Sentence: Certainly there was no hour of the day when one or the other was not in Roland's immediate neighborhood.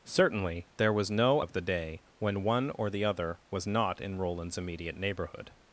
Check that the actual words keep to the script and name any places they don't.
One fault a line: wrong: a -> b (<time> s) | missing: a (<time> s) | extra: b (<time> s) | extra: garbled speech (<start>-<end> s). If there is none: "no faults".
missing: hour (1.4 s)